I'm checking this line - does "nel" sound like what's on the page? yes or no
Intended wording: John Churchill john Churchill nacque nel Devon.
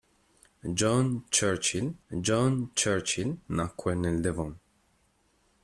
yes